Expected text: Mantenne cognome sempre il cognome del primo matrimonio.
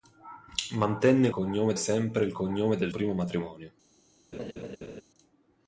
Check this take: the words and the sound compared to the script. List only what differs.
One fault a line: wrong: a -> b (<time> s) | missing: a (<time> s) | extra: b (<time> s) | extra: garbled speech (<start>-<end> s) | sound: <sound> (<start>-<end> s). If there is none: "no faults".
sound: laugh (4.3-5.0 s)